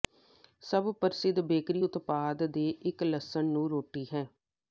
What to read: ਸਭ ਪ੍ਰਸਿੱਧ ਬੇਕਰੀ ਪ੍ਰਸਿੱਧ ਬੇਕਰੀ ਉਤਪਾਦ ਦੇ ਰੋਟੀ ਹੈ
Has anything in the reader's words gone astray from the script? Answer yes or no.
yes